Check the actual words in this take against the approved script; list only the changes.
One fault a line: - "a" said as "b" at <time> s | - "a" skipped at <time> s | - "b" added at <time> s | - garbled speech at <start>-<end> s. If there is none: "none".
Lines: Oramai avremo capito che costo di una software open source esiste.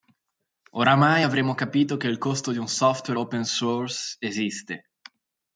- "il" added at 2.1 s
- "una" said as "un" at 2.6 s